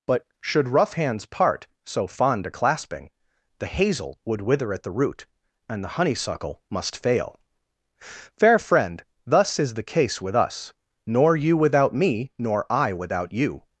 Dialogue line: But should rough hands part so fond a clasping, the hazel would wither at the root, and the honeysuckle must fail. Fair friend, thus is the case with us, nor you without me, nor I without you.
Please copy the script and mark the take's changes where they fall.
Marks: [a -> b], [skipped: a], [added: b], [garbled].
But should rough hands part so fond a clasping, the hazel would wither at the root, and the honeysuckle must fail. Fair friend, thus is the case with us, nor you without me, nor I without you.